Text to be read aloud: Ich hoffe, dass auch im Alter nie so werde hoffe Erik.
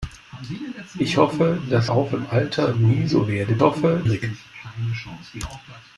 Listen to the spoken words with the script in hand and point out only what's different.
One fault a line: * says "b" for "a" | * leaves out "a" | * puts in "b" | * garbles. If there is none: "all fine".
all fine